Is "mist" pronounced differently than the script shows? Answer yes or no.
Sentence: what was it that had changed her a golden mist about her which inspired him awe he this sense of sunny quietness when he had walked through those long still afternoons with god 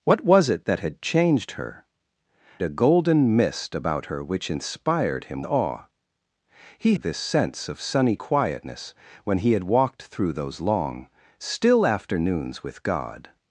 no